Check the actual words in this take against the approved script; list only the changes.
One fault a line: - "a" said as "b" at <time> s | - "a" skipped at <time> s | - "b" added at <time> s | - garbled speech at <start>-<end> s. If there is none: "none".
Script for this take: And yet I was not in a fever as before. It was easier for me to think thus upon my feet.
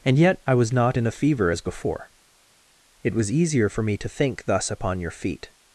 - "my" said as "your" at 5.0 s